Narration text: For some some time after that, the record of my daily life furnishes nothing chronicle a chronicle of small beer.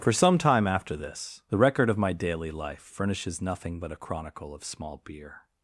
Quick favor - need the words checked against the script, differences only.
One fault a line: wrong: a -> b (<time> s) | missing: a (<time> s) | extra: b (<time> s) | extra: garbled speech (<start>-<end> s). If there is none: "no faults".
missing: some (0.4 s)
wrong: that -> this (1.0 s)
wrong: chronicle -> but (3.8 s)